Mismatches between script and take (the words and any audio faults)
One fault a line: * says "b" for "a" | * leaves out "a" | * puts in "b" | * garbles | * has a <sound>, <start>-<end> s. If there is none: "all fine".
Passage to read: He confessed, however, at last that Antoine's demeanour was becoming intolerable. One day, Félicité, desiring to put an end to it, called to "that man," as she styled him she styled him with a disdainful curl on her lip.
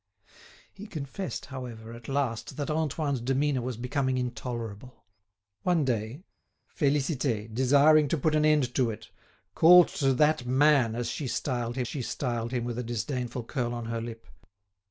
all fine